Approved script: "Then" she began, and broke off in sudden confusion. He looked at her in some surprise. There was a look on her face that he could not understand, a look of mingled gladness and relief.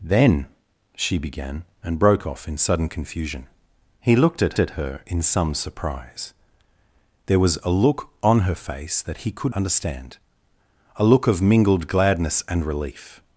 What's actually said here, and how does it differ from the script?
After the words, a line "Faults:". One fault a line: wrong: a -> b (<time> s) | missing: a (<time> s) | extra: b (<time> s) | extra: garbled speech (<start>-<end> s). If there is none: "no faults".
"Then" she began, and broke off in sudden confusion. He looked at at her in some surprise. There was a look on her face that he could understand, a look of mingled gladness and relief.
Faults:
extra: at (4.6 s)
missing: not (9.5 s)